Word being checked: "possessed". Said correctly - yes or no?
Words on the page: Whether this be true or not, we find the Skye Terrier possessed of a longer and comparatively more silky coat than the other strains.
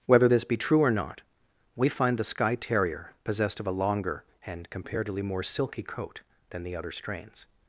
yes